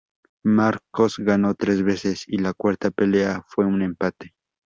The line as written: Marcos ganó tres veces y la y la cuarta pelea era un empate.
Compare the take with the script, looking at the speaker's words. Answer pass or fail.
fail